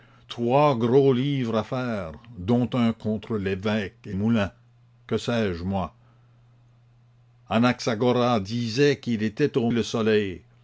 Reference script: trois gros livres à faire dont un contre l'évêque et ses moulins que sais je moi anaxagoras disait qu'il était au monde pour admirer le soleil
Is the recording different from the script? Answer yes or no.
yes